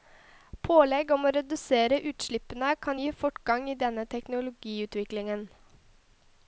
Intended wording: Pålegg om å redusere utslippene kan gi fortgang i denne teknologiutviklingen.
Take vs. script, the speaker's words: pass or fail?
pass